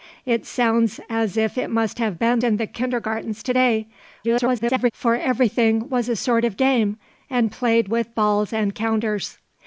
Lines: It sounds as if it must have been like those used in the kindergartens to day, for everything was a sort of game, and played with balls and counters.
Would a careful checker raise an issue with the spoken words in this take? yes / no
yes